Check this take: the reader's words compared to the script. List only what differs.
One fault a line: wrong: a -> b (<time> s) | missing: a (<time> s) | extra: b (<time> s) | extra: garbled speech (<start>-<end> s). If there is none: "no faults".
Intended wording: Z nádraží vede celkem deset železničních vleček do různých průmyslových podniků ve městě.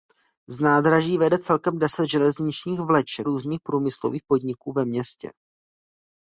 missing: do (3.3 s)